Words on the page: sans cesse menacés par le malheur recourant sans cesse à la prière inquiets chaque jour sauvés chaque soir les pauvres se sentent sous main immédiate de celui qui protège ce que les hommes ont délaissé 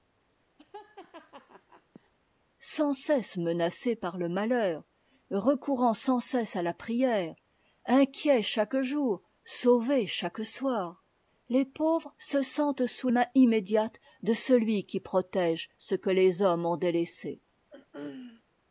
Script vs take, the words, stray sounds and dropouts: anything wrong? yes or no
yes